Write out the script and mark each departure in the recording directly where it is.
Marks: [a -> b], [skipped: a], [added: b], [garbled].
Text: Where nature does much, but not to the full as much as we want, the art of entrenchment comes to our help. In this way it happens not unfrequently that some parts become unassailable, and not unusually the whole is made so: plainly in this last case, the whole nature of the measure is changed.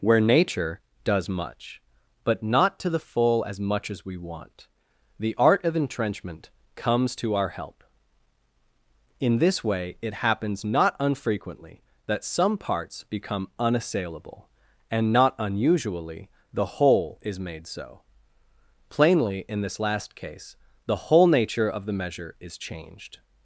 Where nature does much, but not to the full as much as we want, the art of entrenchment comes to our help. In this way it happens not unfrequently that some parts become unassailable, and not unusually the whole is made so: plainly in this last case, the whole nature of the measure is changed.